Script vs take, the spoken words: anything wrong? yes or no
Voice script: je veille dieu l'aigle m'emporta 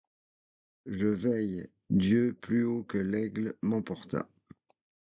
yes